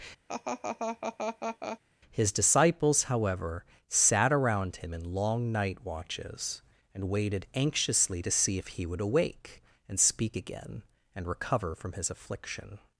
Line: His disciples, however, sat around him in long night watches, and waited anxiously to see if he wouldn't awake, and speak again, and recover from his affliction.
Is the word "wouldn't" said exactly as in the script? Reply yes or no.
no